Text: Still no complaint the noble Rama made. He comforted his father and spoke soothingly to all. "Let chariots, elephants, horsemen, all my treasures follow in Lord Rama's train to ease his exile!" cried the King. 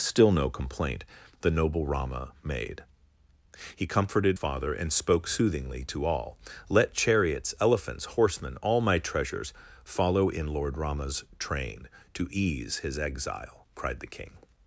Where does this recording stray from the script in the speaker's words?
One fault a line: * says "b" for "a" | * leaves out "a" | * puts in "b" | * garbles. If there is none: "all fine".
* leaves out "his"